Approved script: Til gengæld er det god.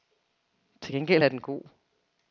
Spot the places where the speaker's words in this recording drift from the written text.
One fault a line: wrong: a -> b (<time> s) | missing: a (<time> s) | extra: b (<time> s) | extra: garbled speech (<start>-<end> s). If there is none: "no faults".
wrong: det -> den (1.3 s)